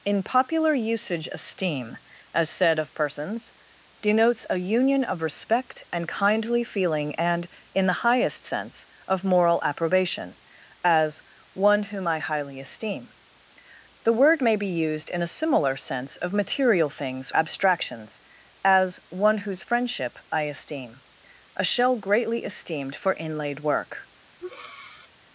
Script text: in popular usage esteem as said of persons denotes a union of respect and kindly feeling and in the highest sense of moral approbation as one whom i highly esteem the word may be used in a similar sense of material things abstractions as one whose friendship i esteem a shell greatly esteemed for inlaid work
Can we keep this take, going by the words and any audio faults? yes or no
no